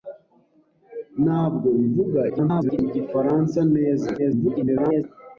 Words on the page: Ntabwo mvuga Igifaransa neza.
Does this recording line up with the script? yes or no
no